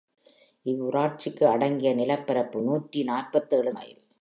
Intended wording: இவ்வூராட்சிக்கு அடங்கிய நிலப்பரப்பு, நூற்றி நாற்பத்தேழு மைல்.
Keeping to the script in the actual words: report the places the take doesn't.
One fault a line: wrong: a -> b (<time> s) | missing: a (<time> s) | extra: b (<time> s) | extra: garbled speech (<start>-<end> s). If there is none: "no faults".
no faults